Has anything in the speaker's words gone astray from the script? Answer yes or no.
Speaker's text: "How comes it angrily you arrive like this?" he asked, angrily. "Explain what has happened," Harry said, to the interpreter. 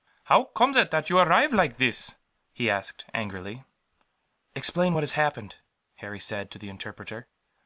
yes